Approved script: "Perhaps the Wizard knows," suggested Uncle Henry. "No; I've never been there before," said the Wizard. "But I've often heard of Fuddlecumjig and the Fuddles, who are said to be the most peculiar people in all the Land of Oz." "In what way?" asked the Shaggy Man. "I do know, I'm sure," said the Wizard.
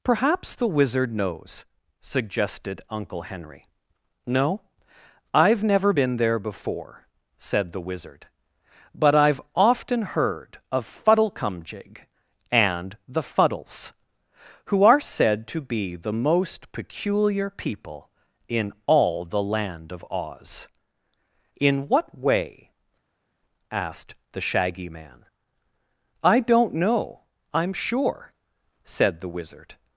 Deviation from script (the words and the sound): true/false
true